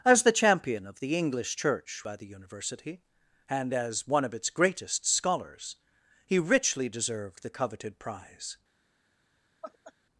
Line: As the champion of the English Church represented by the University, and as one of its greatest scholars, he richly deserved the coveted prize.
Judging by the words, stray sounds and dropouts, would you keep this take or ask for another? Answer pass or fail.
fail